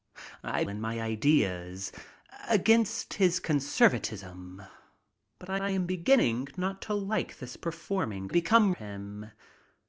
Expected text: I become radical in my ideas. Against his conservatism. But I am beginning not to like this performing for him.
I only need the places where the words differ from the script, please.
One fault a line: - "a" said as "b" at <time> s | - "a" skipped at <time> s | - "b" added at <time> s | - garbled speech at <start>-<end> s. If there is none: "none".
- "become radical" skipped at 0.6 s
- "I" added at 5.6 s
- "for" said as "become" at 8.3 s